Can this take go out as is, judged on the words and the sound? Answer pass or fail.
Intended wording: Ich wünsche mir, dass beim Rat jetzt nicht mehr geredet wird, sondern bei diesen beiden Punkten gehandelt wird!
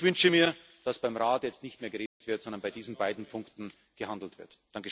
fail